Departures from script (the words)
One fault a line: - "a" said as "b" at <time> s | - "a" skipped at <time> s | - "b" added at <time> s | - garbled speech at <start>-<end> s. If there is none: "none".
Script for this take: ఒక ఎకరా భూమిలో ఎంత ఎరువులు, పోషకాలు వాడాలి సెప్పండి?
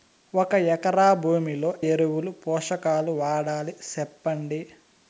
- "ఎంత" skipped at 1.7 s